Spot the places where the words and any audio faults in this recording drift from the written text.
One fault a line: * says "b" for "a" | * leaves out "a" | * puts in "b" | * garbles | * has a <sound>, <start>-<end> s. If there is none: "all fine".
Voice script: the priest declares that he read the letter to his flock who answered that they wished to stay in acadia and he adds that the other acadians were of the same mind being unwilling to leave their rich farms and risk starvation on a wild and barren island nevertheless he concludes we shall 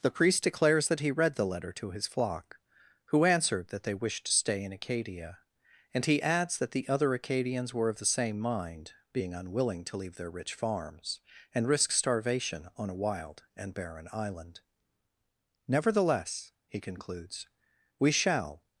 all fine